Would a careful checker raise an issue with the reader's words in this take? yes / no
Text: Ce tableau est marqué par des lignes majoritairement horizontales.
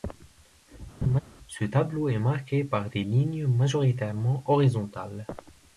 no